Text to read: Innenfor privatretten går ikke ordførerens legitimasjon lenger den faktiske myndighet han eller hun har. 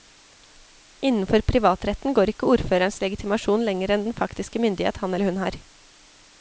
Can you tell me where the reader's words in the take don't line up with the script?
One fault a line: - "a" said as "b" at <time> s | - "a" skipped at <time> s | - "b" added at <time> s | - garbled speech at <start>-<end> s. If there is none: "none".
- "enn" added at 4.0 s